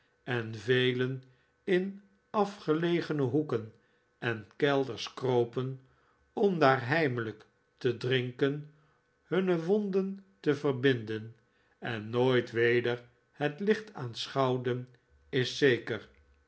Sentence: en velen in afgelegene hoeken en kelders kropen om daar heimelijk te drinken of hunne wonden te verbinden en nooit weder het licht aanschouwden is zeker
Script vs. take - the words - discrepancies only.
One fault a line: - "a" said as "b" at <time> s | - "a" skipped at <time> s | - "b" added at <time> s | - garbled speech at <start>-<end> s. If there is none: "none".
- "of" skipped at 8.7 s